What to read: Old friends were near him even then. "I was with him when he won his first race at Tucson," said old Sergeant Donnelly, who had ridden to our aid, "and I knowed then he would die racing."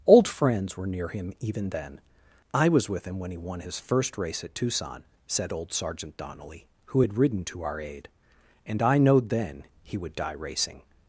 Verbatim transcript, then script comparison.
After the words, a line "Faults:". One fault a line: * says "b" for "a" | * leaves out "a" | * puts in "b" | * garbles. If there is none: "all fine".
Old friends were near him even then. "I was with him when he won his first race at Tucson," said old Sergeant Donnelly, who had ridden to our aid, "and I knowed then he would die racing."
Faults:
all fine